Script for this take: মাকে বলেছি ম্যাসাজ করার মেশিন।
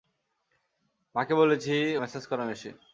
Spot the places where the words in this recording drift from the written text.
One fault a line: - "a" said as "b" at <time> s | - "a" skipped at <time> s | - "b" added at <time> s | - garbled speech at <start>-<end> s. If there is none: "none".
none